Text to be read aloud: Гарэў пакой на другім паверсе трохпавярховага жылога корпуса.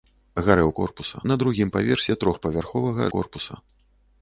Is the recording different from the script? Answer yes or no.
yes